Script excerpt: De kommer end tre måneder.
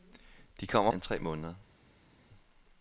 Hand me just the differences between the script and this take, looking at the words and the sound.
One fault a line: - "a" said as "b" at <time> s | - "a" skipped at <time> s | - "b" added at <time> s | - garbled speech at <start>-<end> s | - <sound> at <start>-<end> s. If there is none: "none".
none